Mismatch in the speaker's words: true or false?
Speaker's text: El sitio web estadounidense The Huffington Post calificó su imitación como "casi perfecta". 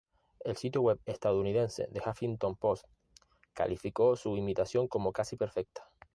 false